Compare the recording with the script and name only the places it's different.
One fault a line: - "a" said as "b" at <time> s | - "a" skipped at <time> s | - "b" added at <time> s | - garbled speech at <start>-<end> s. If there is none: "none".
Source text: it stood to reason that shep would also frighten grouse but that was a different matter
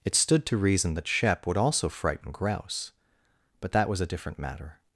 none